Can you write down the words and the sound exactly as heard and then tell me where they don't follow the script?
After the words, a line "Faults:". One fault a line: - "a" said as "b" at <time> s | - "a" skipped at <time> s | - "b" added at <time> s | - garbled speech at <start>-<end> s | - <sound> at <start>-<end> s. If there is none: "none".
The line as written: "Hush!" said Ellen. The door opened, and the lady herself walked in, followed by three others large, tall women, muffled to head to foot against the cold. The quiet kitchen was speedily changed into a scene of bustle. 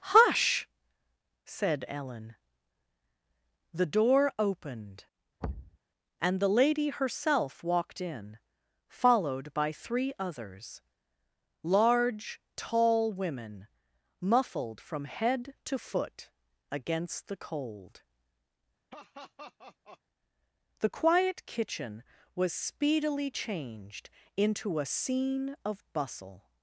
"Hush!" said Ellen. The door opened, and the lady herself walked in, followed by three others large, tall women, muffled from head to foot against the cold. The quiet kitchen was speedily changed into a scene of bustle.
Faults:
- thud at 5.4-5.8 s
- "to" said as "from" at 14.8 s
- laugh at 18.9-20.0 s